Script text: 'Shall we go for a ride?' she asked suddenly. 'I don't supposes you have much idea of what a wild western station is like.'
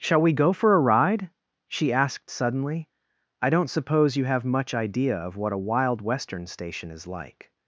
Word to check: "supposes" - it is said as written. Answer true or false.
false